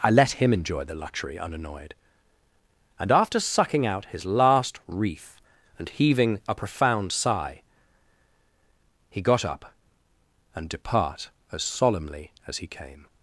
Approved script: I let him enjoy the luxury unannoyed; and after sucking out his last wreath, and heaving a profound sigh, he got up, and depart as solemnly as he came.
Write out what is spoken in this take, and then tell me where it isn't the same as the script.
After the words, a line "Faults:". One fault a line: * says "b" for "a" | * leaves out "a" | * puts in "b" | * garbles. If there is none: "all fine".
I let him enjoy the luxury unannoyed; and after sucking out his last wreath, and heaving a profound sigh, he got up, and depart as solemnly as he came.
Faults:
all fine